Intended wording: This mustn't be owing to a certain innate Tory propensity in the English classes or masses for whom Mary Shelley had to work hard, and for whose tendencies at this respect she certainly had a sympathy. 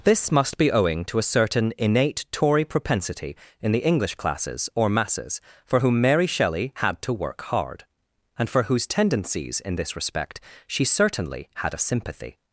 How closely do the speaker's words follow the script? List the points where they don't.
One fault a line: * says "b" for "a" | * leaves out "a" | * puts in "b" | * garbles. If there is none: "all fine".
* says "must" for "mustn't"
* says "in" for "at"